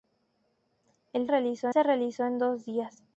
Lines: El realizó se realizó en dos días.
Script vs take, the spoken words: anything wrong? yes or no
no